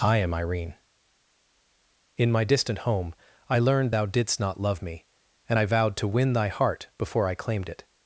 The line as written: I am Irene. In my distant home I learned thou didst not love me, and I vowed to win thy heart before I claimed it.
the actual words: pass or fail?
pass